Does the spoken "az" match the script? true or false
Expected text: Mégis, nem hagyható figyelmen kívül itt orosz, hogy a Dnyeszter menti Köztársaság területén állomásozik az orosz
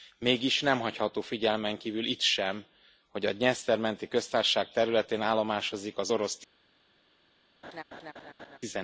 true